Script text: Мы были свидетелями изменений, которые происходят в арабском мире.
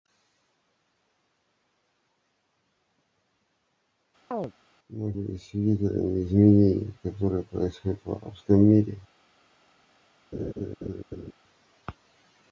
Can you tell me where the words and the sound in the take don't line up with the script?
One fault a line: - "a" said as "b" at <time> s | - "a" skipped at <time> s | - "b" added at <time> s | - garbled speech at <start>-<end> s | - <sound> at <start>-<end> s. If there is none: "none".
- chirp at 4.3-4.5 s
- laugh at 10.3-11.3 s